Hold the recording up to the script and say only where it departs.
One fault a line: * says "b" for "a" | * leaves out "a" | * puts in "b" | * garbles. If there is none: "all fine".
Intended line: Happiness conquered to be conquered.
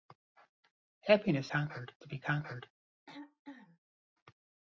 all fine